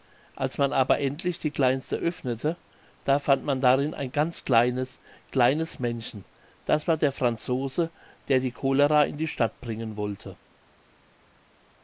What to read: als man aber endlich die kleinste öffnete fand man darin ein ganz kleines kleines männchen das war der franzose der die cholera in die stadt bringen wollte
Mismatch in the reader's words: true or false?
true